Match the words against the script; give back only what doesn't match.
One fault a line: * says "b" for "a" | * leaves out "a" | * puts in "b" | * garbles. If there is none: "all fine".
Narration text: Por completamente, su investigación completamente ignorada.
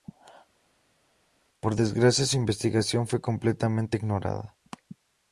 * says "desgracia" for "completamente"
* puts in "fue"